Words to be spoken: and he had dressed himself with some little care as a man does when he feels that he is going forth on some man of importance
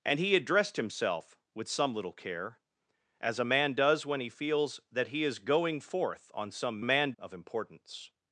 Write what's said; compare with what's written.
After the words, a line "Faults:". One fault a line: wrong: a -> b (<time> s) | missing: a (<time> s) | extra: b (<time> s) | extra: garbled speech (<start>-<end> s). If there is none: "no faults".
and he had dressed himself with some little care as a man does when he feels that he is going forth on some man of importance
Faults:
no faults